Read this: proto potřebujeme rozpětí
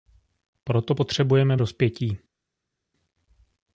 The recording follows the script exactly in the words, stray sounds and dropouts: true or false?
true